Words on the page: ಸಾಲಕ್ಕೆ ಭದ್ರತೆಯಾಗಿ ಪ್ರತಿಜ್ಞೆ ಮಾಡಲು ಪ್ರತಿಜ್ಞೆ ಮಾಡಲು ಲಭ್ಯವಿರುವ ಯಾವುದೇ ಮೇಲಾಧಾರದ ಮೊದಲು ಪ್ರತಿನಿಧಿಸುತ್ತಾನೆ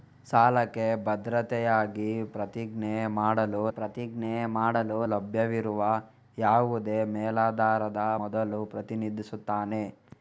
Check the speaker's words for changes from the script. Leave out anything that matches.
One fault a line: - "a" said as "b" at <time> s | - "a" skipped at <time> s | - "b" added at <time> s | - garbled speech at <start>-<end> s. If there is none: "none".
none